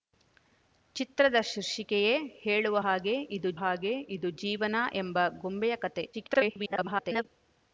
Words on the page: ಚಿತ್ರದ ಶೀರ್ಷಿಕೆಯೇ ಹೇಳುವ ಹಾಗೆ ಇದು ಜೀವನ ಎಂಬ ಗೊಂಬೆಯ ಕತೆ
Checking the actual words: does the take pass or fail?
fail